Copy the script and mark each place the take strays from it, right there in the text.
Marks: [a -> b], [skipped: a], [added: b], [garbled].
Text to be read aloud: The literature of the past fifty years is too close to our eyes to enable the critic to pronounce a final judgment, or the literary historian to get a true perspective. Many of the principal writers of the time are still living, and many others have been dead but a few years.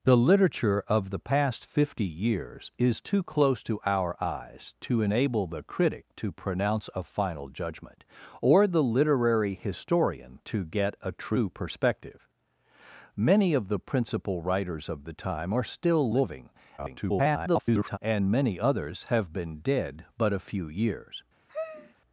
The literature of the past fifty years is too close to our eyes to enable the critic to pronounce a final judgment, or the literary historian to get a true perspective. Many of the principal writers of the time are still living, [garbled] and many others have been dead but a few years.